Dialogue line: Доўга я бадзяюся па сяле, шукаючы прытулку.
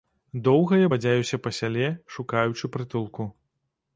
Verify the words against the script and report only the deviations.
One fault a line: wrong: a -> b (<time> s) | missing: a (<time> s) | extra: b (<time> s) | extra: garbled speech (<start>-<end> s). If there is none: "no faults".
no faults